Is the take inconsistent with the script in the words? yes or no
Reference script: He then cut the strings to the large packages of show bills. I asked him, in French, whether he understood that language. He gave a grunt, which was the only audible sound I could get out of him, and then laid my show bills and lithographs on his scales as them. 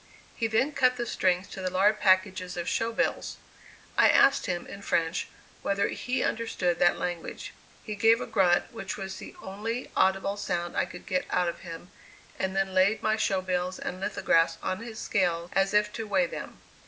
yes